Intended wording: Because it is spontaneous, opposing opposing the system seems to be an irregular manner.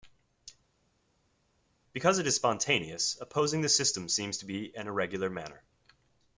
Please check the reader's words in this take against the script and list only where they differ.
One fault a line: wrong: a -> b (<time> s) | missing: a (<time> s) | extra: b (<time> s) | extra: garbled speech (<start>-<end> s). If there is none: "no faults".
missing: opposing (3.6 s)